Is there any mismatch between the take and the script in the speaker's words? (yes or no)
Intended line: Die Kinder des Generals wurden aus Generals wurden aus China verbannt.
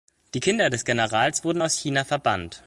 yes